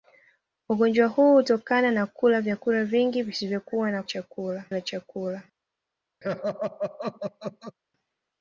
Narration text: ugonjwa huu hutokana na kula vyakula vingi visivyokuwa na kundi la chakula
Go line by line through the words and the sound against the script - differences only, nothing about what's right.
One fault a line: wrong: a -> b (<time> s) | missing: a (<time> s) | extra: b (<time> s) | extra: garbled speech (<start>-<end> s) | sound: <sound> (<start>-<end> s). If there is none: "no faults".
wrong: kundi -> chakula (4.0 s)
sound: laugh (6.2-7.8 s)